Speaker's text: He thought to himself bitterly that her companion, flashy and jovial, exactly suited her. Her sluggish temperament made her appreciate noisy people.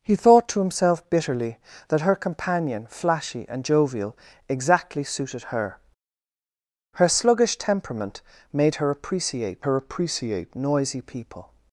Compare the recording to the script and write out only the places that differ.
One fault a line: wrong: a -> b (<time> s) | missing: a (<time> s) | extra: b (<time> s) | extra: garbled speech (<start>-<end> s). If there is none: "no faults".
extra: her appreciate (9.6 s)